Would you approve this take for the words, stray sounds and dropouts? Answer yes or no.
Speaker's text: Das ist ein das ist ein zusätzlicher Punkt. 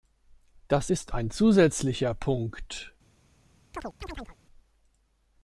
no